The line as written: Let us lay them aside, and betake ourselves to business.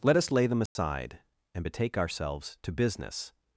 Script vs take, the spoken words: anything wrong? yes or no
no